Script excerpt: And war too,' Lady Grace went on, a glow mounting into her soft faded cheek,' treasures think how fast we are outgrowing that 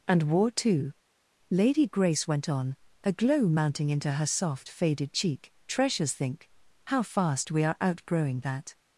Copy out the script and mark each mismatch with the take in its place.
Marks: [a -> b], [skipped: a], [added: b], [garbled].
And war too,' Lady Grace went on, a glow mounting into her soft faded cheek,' treasures think how fast we are outgrowing that